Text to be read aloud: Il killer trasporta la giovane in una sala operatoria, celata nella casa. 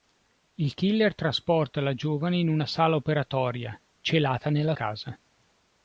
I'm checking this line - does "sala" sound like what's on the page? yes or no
yes